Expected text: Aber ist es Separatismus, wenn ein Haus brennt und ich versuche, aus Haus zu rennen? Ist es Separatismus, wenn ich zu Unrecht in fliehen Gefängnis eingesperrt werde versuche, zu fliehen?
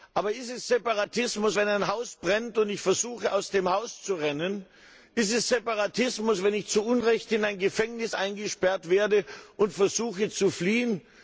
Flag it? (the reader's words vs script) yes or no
yes